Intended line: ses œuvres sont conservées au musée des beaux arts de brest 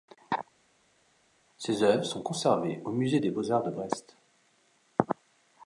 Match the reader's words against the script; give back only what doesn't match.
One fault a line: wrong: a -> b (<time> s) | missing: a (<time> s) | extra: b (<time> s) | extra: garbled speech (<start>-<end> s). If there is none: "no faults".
no faults